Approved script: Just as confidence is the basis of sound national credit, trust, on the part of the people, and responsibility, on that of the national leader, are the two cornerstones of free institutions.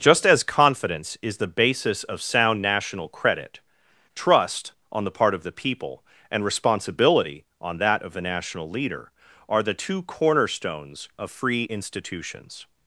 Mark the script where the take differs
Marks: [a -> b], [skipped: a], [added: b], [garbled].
Just as confidence is the basis of sound national credit, trust, on the part of the people, and responsibility, on that of the national leader, are the two cornerstones of free institutions.